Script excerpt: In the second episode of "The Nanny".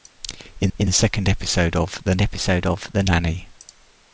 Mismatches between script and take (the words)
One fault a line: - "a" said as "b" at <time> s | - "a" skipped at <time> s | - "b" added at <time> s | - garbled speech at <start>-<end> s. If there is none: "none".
- "in" added at 0.8 s
- "episode of The" added at 2.2 s